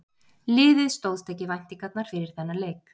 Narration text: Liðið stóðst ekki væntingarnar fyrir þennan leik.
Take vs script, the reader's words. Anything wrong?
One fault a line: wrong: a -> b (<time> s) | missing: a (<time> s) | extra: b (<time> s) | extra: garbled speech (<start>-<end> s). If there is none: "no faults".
no faults